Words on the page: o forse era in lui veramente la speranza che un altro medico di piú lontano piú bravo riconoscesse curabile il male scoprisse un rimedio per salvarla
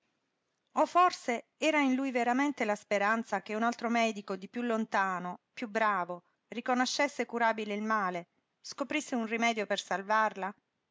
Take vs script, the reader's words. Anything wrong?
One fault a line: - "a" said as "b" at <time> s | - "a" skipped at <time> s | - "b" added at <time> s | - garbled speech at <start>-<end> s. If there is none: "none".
none